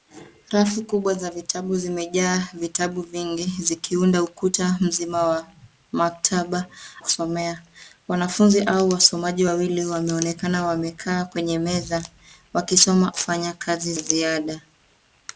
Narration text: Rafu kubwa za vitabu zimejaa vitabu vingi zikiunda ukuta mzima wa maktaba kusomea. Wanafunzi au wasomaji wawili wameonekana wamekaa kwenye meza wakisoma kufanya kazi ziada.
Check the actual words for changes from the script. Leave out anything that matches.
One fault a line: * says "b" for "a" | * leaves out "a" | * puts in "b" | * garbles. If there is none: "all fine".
all fine